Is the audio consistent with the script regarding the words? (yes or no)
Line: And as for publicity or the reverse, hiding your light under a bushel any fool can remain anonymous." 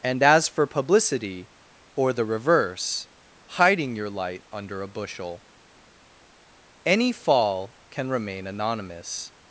no